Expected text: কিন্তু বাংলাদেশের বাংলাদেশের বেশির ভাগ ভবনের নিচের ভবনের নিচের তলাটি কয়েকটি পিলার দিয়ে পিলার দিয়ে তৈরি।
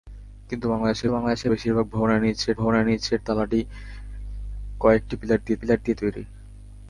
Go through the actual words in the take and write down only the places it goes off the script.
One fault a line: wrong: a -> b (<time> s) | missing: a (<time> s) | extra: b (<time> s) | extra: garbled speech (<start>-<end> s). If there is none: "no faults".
no faults